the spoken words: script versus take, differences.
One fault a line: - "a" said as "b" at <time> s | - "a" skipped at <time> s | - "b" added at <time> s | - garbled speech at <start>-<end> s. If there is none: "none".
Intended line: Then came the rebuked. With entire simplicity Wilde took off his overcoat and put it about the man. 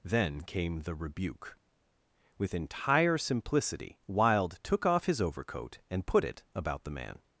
- "rebuked" said as "rebuke" at 0.9 s